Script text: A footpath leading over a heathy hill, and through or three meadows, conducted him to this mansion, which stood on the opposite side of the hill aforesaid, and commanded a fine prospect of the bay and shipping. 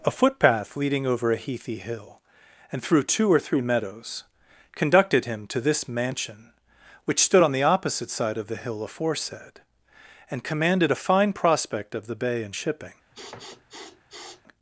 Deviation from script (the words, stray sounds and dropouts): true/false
true